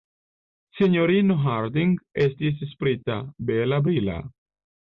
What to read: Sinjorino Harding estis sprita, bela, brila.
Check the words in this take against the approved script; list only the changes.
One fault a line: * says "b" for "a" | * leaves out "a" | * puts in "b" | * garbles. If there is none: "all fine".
all fine